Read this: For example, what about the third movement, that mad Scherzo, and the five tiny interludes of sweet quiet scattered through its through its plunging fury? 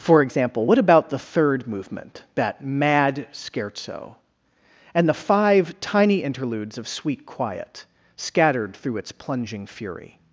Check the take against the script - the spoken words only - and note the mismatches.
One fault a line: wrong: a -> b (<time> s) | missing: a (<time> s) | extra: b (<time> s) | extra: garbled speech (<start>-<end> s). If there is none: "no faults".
missing: through its (9.1 s)